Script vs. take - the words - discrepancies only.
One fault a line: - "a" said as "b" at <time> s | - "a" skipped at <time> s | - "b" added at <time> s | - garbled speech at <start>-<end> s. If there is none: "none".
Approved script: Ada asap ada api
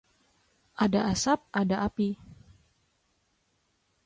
none